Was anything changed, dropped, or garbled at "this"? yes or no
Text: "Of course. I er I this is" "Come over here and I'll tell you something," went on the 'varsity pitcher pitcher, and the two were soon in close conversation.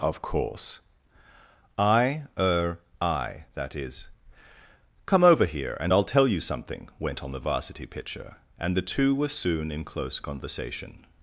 yes